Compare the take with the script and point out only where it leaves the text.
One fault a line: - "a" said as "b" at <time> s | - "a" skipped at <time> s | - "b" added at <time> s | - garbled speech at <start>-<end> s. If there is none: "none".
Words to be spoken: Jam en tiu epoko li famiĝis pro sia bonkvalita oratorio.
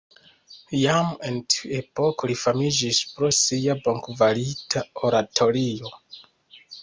none